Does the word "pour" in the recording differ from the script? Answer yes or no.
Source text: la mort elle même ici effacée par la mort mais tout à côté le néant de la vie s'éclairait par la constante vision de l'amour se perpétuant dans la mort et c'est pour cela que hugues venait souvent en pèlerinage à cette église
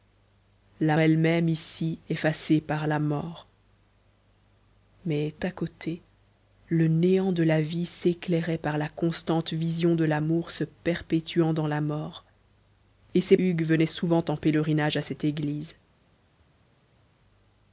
yes